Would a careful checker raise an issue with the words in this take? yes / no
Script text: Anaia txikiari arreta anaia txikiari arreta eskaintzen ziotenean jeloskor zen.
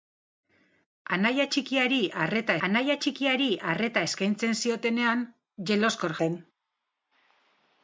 no